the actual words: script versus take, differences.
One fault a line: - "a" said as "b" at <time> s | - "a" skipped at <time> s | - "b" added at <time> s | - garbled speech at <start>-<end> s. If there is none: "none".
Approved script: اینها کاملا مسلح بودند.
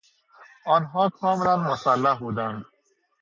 - "اینها" said as "آنها" at 0.7 s